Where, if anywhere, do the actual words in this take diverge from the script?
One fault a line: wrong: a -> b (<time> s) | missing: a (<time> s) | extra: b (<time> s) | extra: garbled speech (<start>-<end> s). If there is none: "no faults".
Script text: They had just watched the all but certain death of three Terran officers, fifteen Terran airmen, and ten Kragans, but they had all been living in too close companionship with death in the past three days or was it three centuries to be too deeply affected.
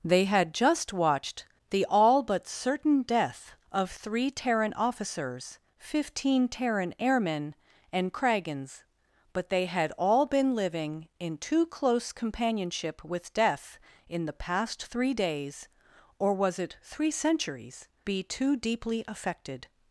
missing: ten (8.1 s)
missing: to (17.9 s)